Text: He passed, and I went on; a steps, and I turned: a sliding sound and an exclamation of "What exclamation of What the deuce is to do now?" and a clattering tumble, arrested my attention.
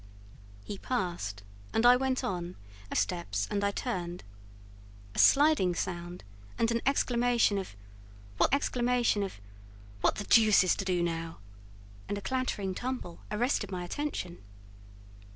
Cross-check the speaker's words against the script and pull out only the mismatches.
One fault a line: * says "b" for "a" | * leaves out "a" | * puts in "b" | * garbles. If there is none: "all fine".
all fine